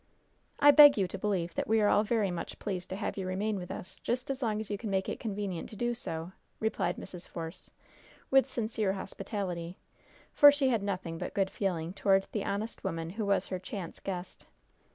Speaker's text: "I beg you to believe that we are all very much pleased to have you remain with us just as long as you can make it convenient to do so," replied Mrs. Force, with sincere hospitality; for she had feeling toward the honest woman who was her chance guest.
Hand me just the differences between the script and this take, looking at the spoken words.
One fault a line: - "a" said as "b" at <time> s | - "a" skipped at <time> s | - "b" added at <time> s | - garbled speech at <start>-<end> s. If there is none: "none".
- "nothing but good" added at 10.8 s